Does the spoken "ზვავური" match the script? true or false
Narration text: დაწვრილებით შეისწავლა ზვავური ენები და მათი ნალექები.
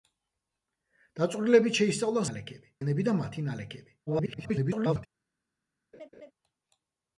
false